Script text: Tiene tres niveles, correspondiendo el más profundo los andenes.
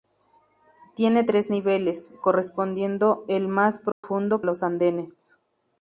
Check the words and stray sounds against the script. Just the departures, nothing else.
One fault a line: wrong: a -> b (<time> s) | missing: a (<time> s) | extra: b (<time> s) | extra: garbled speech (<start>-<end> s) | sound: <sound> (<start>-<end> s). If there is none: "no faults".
sound: dropout (3.9-4.0 s)